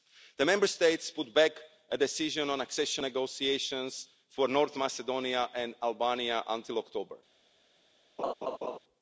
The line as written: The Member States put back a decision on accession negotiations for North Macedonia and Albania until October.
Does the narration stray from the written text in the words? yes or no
no